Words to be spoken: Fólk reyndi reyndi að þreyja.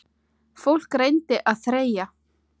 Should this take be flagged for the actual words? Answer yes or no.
yes